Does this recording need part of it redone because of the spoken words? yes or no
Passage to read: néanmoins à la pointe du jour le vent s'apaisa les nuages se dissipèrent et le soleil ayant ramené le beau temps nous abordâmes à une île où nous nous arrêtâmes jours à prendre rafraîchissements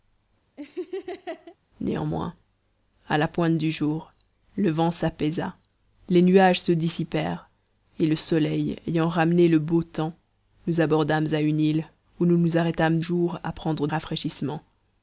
no